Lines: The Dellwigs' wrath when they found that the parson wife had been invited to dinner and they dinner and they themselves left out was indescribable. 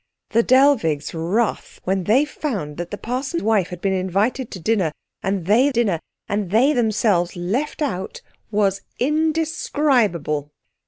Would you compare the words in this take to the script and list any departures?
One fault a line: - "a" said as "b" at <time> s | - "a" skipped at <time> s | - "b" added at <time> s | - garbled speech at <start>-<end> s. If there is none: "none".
none